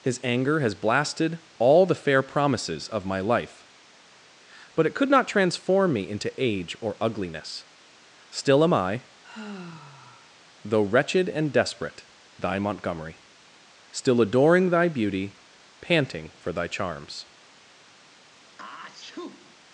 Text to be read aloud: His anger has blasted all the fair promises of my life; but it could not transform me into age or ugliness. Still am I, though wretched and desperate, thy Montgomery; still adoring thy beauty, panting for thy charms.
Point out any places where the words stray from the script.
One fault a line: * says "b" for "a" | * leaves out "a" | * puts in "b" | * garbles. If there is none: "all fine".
all fine